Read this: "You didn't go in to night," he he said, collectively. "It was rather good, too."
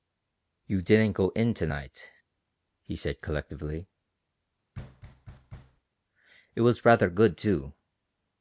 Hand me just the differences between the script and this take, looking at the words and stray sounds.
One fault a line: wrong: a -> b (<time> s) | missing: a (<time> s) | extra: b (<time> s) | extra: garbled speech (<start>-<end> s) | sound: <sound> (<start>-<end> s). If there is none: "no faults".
missing: he (3.0 s)
sound: thud (4.7-5.8 s)